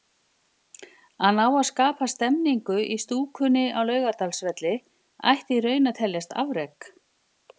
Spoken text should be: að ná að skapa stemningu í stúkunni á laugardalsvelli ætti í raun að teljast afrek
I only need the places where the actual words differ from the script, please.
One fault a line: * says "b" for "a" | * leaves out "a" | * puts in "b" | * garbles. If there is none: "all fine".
all fine